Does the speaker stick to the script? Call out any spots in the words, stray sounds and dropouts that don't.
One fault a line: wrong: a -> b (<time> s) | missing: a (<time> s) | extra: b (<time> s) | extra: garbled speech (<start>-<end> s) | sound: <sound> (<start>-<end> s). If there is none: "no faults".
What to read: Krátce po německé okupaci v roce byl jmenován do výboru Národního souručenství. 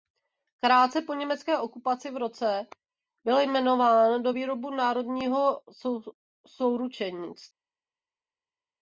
no faults